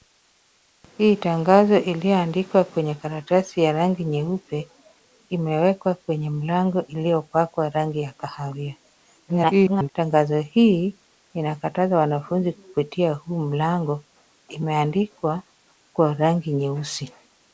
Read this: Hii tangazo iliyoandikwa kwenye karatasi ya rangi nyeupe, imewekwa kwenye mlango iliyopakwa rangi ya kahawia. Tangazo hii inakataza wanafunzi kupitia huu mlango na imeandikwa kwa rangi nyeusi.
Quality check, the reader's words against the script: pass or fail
fail